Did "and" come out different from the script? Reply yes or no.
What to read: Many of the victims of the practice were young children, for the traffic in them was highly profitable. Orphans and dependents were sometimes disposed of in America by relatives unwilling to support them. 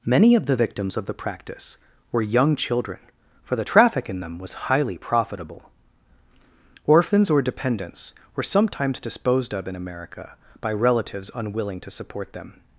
yes